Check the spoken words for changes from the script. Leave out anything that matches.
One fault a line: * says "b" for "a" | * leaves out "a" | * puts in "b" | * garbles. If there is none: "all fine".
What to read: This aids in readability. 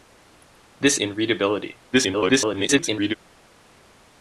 * leaves out "aids"
* garbles